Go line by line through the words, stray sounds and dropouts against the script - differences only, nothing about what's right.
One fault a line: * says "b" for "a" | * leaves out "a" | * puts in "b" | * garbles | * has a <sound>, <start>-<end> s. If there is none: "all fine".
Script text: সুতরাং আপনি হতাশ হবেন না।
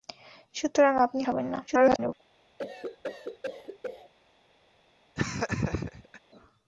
* leaves out "হতাশ"
* garbles
* has a cough, 2.6-4.1 s
* has a laugh, 5.2-6.2 s